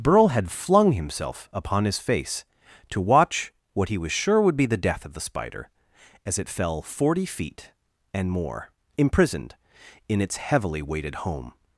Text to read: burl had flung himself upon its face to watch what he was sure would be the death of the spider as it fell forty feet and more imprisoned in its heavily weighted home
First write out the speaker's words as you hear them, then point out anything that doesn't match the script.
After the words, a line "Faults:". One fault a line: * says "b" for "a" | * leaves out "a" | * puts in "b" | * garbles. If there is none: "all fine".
burl had flung himself upon his face to watch what he was sure would be the death of the spider as it fell forty feet and more imprisoned in its heavily weighted home
Faults:
* says "his" for "its"